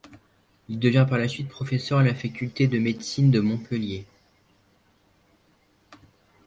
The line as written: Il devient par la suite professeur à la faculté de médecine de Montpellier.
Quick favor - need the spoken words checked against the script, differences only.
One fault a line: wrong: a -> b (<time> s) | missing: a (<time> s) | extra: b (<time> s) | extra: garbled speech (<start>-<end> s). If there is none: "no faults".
no faults